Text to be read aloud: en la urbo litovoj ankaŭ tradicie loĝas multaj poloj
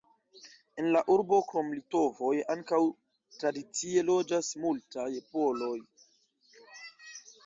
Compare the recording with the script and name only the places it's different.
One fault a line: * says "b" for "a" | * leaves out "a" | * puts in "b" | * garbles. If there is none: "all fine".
* puts in "krom"